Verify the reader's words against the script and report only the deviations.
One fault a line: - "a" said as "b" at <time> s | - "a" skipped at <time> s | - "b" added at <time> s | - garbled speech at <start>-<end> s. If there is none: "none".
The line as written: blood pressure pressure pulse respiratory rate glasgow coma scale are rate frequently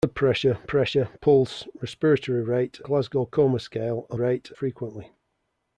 none